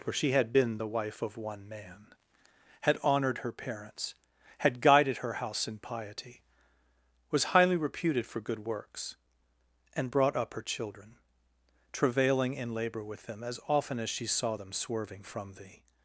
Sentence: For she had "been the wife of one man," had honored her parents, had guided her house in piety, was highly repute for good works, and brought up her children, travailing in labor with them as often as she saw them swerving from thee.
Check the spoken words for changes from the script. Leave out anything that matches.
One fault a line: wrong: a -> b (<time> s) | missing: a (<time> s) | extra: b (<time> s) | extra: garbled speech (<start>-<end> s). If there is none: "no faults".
wrong: repute -> reputed (7.8 s)